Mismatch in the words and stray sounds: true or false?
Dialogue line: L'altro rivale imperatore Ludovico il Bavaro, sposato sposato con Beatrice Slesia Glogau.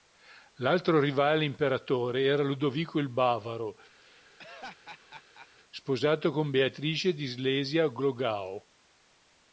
true